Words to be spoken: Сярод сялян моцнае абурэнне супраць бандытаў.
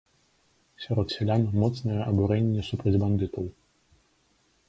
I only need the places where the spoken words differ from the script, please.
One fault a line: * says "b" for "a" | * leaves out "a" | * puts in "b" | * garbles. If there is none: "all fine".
all fine